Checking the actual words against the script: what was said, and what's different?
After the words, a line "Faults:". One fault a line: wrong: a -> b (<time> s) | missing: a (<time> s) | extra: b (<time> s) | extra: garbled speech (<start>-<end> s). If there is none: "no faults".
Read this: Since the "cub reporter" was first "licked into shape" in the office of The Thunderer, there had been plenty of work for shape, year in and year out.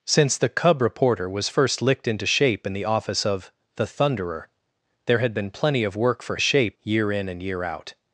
Since the "cub reporter" was first "licked into shape" in the office of The Thunderer, there had been plenty of work for shape, year in and year out.
Faults:
no faults